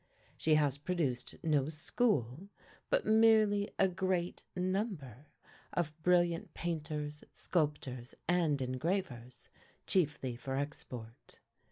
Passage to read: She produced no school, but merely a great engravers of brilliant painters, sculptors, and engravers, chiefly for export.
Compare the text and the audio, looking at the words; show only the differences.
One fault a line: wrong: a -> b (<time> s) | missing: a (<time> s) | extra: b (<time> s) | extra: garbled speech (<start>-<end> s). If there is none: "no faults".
extra: has (0.6 s)
wrong: engravers -> number (4.5 s)